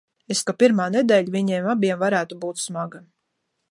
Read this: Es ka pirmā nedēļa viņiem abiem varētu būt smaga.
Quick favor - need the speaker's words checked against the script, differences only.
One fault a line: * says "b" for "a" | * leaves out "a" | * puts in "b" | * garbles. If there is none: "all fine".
all fine